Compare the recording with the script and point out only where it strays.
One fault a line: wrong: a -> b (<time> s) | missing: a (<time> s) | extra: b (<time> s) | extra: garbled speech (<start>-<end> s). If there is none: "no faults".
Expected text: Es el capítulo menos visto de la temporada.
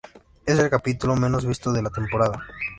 no faults